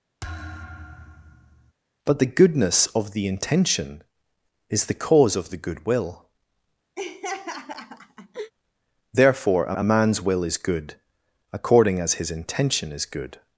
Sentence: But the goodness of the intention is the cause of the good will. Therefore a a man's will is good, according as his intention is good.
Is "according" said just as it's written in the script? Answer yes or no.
yes